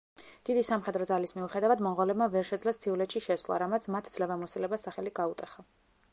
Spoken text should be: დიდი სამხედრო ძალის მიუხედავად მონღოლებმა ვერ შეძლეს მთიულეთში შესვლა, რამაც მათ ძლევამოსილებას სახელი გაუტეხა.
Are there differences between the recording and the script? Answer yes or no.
no